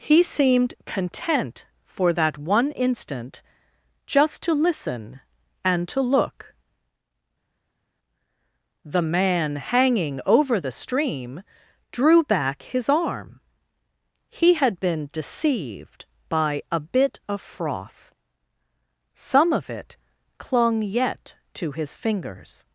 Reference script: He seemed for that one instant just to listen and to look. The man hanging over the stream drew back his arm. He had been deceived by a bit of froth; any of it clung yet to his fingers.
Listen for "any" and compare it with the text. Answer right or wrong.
wrong